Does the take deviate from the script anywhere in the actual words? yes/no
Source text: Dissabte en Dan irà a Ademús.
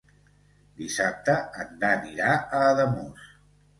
no